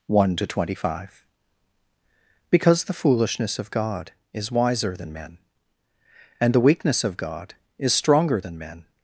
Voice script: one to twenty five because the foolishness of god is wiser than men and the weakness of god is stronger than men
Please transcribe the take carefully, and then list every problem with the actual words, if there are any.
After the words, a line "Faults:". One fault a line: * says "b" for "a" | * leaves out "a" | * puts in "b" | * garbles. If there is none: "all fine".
one to twenty five because the foolishness of god is wiser than men and the weakness of god is stronger than men
Faults:
all fine